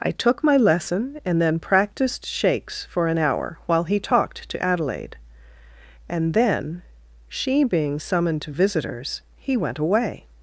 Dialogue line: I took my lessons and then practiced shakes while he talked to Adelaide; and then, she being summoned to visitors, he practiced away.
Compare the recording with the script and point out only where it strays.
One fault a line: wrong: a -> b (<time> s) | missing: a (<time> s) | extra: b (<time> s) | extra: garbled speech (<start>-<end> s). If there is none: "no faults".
wrong: lessons -> lesson (0.6 s)
extra: for an hour (2.9 s)
wrong: practiced -> went (9.6 s)